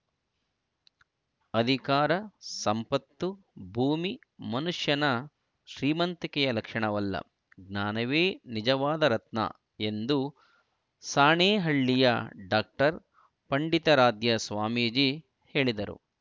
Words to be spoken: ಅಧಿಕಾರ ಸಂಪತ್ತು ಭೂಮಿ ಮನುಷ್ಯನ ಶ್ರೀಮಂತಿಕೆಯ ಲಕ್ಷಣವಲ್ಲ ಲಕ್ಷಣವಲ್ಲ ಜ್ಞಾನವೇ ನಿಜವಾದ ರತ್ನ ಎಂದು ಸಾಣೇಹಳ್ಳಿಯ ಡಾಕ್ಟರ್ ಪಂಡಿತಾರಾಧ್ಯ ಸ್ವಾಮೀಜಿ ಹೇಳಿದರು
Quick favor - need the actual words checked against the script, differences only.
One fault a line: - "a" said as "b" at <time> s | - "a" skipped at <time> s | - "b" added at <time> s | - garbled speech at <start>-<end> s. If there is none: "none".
- "ಲಕ್ಷಣವಲ್ಲ" skipped at 7.2 s